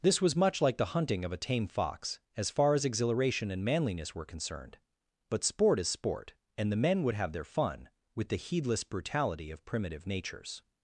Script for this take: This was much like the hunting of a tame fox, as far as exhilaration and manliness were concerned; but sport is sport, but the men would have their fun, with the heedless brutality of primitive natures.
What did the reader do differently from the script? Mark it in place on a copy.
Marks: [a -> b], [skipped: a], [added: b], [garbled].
This was much like the hunting of a tame fox, as far as exhilaration and manliness were concerned; but sport is sport, [but -> and] the men would have their fun, with the heedless brutality of primitive natures.